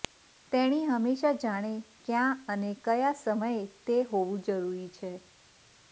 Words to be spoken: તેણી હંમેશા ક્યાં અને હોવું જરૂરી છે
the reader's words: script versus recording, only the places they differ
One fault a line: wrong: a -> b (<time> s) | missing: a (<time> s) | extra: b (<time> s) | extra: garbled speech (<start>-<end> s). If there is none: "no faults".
extra: જાણે (1.4 s)
extra: કયા સમયે તે (2.9 s)